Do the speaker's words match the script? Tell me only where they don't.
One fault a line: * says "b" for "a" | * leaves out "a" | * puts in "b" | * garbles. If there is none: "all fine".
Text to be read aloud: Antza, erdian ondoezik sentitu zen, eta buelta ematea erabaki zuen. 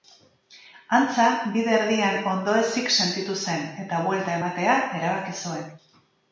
* puts in "bide"